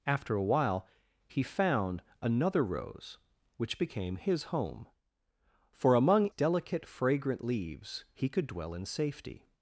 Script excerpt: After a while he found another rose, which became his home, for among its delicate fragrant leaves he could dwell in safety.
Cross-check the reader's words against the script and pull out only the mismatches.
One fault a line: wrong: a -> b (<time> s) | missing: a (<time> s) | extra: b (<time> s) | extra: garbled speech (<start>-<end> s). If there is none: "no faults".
missing: its (6.3 s)